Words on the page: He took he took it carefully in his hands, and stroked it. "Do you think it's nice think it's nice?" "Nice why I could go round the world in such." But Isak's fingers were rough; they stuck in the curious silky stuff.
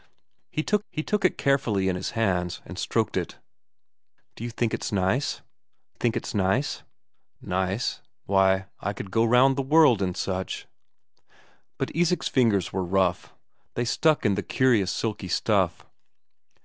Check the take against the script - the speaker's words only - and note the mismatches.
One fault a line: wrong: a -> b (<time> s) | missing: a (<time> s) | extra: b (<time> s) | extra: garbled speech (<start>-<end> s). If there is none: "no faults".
no faults